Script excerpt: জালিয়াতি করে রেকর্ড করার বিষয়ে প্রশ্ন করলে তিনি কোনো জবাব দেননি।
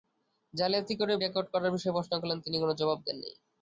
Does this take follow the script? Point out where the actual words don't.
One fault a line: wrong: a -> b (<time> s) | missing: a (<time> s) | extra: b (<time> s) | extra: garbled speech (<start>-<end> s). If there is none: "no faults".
no faults